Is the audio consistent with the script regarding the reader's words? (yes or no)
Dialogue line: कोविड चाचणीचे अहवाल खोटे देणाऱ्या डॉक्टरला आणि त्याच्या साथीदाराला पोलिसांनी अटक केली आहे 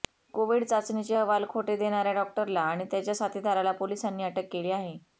yes